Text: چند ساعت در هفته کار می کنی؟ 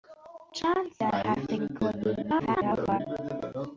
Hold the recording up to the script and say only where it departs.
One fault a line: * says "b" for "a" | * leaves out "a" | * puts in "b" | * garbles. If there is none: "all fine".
* leaves out "ساعت"
* leaves out "کار"
* garbles